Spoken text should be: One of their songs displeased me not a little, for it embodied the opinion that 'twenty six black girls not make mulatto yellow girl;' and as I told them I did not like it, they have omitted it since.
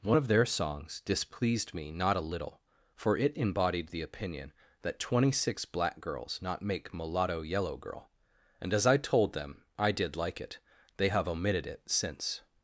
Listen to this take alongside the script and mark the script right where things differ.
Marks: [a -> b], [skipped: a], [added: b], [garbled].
One of their songs displeased me not a little, for it embodied the opinion that 'twenty six black girls not make mulatto yellow girl;' and as I told them I did [skipped: not] like it, they have omitted it since.